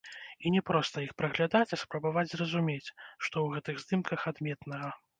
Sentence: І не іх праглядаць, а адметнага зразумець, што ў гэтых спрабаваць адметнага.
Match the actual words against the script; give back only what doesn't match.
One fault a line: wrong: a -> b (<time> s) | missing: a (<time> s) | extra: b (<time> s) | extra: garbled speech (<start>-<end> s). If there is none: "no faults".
extra: проста (0.7 s)
wrong: адметнага -> спрабаваць (1.8 s)
wrong: спрабаваць -> здымках (3.9 s)